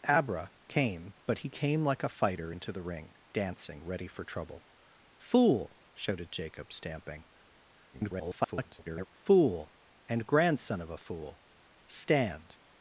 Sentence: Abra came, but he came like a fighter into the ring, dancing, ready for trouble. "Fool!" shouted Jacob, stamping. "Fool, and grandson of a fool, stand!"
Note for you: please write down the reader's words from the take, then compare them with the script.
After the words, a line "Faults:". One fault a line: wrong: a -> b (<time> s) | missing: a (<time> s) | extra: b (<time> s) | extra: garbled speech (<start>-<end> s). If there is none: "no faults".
Abra came, but he came like a fighter into the ring, dancing, ready for trouble. "Fool!" shouted Jacob, stamping. [garbled] "Fool, and grandson of a fool, stand!"
Faults:
extra: garbled speech (7.9-9.1 s)